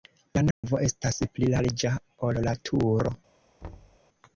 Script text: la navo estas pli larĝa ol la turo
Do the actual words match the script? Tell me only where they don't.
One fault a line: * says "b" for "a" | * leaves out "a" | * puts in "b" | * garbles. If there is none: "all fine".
all fine